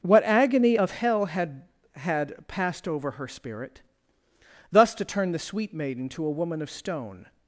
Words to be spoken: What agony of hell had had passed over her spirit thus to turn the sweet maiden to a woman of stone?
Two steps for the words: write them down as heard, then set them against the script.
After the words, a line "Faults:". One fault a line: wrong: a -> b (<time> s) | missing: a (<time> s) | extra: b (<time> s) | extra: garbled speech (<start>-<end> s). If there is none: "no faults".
What agony of hell had had passed over her spirit thus to turn the sweet maiden to a woman of stone?
Faults:
no faults